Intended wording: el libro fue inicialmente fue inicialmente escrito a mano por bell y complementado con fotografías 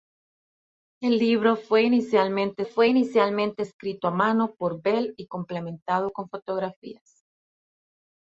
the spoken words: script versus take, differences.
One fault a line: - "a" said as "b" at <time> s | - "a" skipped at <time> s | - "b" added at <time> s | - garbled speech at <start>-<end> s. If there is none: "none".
none